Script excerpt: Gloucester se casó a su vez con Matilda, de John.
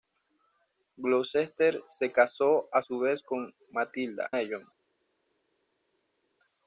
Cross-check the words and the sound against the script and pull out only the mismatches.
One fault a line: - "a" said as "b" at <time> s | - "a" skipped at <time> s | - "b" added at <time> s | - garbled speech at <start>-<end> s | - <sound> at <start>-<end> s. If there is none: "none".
none